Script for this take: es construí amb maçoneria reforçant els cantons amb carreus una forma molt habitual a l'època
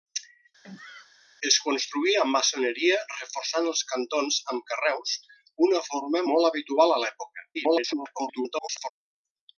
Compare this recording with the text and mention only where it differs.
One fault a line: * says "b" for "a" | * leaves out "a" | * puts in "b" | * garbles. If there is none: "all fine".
* garbles